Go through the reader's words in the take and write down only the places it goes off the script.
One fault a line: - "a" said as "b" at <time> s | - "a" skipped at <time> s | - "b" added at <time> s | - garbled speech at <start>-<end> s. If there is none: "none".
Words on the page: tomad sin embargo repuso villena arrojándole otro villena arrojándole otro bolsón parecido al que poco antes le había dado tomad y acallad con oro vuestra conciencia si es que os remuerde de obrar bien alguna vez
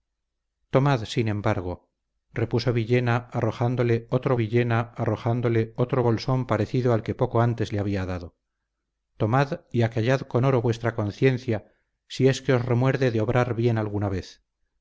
none